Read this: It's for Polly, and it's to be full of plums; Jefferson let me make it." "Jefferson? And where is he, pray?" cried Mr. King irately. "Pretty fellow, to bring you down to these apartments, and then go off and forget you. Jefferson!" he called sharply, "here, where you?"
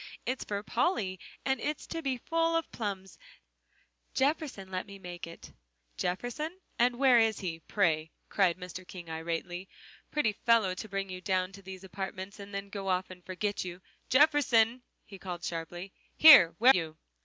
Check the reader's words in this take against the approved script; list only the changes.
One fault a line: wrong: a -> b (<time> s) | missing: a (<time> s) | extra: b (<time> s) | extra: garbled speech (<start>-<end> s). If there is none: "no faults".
no faults